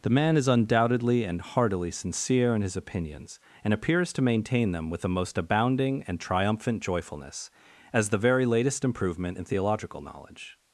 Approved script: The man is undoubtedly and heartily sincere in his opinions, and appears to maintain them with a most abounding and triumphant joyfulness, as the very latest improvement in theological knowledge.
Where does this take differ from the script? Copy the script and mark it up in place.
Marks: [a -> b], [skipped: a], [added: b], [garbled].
The man is undoubtedly and heartily sincere in his opinions, and appears to maintain them with [a -> the] most abounding and triumphant joyfulness, as the very latest improvement in theological knowledge.